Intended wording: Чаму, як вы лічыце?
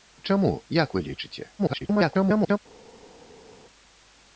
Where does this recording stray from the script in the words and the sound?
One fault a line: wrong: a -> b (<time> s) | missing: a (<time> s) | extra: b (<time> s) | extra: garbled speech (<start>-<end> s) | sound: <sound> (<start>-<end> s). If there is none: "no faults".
extra: garbled speech (1.6-2.6 s)